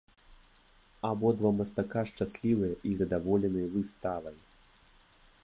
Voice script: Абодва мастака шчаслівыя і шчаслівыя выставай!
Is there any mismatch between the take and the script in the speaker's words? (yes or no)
yes